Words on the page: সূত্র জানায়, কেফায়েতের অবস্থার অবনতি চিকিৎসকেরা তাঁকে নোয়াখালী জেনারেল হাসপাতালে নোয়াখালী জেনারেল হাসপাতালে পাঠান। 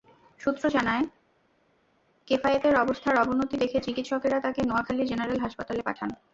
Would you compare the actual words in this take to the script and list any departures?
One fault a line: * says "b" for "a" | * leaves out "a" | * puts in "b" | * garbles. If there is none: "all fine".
* puts in "দেখে"
* leaves out "নোয়াখালী জেনারেল হাসপাতালে"